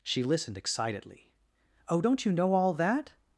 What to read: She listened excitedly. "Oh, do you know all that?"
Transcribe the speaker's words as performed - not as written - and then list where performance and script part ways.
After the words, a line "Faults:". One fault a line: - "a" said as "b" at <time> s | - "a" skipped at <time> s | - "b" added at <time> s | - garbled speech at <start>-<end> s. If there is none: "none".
She listened excitedly. "Oh, don't you know all that?"
Faults:
- "do" said as "don't" at 2.0 s